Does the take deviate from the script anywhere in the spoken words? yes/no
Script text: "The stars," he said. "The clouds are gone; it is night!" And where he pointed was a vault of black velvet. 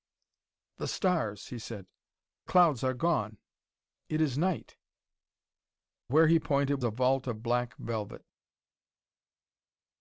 yes